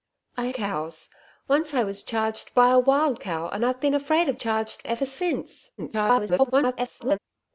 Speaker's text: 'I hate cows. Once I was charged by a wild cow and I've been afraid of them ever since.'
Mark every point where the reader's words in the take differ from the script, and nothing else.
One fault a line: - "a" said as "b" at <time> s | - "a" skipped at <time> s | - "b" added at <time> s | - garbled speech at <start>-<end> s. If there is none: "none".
- "hate" skipped at 0.5 s
- "them" said as "charged" at 4.3 s
- garbled speech at 5.8-7.2 s